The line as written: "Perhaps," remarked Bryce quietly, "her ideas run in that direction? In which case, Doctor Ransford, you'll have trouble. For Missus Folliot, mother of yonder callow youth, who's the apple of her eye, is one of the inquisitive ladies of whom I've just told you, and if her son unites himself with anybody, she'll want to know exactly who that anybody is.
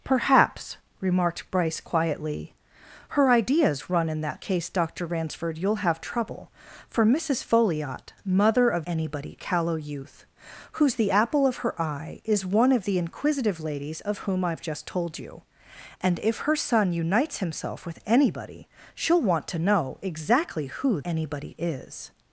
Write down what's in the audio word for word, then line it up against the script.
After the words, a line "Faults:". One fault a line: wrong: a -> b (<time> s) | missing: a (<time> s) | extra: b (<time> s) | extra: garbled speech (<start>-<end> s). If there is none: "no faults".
"Perhaps," remarked Bryce quietly, "her ideas run in that case, Doctor Ransford, you'll have trouble. For Missus Folliot, mother of anybody callow youth, who's the apple of her eye, is one of the inquisitive ladies of whom I've just told you, and if her son unites himself with anybody, she'll want to know exactly who anybody is.
Faults:
missing: direction In which (4.4 s)
wrong: yonder -> anybody (8.9 s)
missing: that (21.0 s)